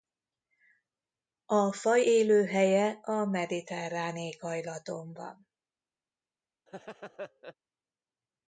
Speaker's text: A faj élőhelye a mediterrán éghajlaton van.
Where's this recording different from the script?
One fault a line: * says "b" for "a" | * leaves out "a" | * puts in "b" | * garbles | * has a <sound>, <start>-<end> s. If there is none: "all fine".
* has a laugh, 6.7-7.5 s